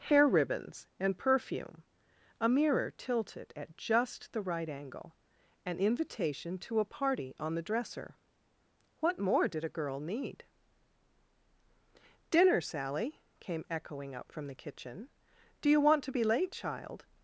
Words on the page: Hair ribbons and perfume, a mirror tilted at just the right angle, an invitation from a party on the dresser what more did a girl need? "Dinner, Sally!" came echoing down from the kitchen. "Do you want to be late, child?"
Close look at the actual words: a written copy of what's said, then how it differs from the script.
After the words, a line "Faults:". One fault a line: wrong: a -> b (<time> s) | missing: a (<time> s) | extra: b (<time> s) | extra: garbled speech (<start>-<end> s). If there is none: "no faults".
Hair ribbons and perfume, a mirror tilted at just the right angle, an invitation to a party on the dresser what more did a girl need? "Dinner, Sally!" came echoing up from the kitchen. "Do you want to be late, child?"
Faults:
wrong: from -> to (6.6 s)
wrong: down -> up (14.1 s)